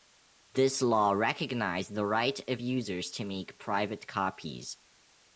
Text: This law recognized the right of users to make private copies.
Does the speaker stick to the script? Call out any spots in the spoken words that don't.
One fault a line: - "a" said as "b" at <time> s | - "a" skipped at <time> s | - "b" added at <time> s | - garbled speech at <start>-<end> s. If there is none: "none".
none